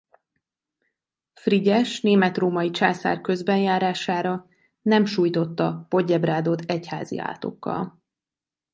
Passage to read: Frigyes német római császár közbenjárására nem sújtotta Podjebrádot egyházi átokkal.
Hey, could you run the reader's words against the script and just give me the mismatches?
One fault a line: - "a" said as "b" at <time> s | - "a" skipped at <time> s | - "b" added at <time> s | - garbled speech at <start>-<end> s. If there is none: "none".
none